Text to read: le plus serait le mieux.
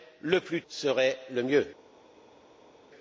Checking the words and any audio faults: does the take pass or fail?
pass